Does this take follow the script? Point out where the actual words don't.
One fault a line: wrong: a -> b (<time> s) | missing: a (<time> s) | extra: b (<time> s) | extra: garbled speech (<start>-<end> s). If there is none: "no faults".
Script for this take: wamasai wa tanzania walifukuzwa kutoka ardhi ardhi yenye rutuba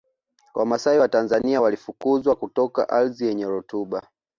missing: ardhi (3.3 s)